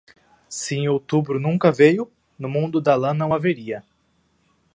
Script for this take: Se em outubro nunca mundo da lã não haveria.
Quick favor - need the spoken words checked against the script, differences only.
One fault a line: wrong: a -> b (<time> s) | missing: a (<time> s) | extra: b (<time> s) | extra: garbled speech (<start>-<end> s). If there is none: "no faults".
extra: veio no (1.7 s)